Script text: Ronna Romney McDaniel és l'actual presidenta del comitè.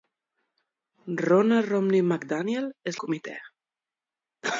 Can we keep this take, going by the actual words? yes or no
no